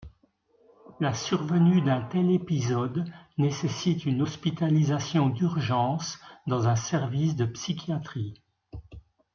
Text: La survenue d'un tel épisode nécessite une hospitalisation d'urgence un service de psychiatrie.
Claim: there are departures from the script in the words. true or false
true